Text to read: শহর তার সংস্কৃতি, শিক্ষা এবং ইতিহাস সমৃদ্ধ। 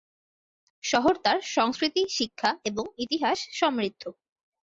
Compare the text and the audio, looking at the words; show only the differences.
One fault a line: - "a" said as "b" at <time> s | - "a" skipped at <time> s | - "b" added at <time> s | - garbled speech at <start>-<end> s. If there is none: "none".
none